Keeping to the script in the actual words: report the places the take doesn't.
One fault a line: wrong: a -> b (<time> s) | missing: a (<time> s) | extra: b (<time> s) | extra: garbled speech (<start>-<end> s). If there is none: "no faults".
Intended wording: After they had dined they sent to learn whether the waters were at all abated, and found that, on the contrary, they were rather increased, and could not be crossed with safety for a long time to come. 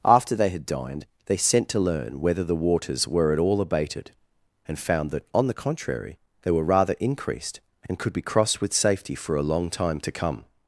missing: not (8.1 s)